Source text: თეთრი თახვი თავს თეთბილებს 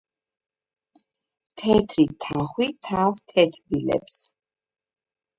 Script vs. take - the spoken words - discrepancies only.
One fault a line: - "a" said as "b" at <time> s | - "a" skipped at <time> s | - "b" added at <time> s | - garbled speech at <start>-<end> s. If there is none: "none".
none